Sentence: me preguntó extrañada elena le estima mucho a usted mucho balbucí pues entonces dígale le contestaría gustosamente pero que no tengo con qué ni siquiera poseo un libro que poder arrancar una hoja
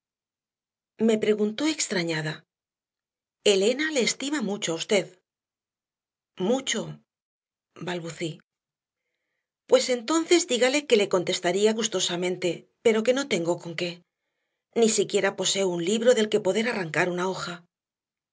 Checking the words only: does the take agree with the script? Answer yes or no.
no